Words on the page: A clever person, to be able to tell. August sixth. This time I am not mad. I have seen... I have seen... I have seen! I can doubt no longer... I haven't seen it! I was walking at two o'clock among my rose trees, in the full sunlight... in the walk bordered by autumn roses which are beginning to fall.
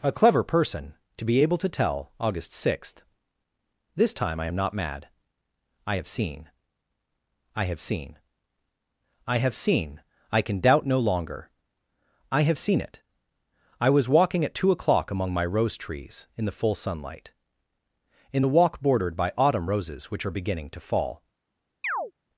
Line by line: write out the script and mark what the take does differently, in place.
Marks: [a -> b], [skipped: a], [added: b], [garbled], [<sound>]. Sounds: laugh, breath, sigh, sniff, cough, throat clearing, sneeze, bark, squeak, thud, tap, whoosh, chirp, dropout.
A clever person, to be able to tell. August sixth. This time I am not mad. I have seen... I have seen... I have seen! I can doubt no longer... I [haven't -> have] seen it! I was walking at two o'clock among my rose trees, in the full sunlight... in the walk bordered by autumn roses which are beginning to fall. [chirp]